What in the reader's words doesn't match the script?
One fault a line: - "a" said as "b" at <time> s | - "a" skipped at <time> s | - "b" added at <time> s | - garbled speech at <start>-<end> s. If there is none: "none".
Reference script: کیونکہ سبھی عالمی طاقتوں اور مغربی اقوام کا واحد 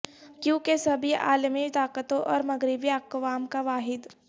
none